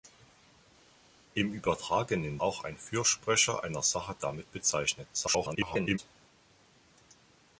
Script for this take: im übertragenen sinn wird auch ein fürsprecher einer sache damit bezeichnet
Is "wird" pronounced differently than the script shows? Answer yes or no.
yes